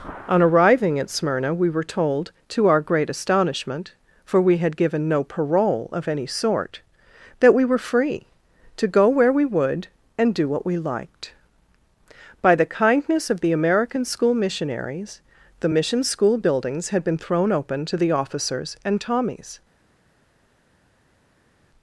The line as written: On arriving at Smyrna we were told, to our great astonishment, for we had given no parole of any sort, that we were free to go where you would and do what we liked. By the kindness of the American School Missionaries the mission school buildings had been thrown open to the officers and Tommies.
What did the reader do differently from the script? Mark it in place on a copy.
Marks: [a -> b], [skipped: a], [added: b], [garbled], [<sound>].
On arriving at Smyrna we were told, to our great astonishment, for we had given no parole of any sort, that we were free to go where [you -> we] would and do what we liked. By the kindness of the American School Missionaries the mission school buildings had been thrown open to the officers and Tommies.